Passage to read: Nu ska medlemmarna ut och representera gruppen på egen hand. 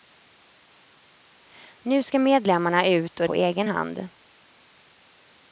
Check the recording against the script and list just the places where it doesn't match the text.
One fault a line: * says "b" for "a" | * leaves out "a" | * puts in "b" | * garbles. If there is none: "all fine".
* leaves out "representera gruppen"